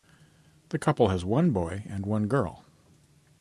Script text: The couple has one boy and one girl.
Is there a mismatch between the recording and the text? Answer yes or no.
no